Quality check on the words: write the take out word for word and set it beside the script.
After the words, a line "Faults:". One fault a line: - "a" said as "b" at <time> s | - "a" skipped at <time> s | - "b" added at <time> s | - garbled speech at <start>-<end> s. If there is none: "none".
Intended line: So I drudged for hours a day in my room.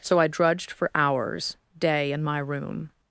So I drudged for hours day in my room.
Faults:
- "a" skipped at 1.6 s